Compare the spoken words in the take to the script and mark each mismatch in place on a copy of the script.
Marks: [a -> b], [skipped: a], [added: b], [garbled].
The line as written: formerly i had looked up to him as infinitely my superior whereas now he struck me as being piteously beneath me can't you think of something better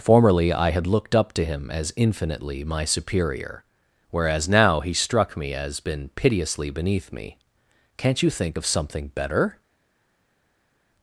formerly i had looked up to him as infinitely my superior whereas now he struck me as [being -> been] piteously beneath me can't you think of something better